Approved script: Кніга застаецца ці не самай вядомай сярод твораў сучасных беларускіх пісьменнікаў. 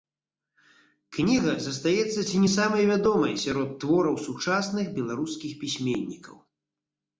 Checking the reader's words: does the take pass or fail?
pass